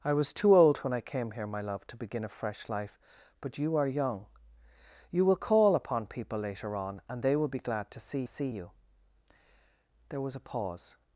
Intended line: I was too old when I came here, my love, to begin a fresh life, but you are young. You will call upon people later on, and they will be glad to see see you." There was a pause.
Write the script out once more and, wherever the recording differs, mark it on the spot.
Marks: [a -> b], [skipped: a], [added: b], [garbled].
I was too old when I came here, my love, to begin a fresh life, but you are young. You will call upon people later on, and they will be glad to see see you." There was a pause.